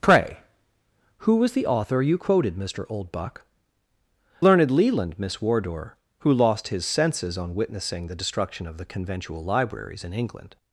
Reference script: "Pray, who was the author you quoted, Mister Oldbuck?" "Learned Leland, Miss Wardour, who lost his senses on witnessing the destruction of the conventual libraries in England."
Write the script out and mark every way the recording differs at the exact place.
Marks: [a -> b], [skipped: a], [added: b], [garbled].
"Pray, who was the author you quoted, Mister Oldbuck?" "Learned Leland, Miss Wardour, who lost his senses on witnessing the destruction of the conventual libraries in England."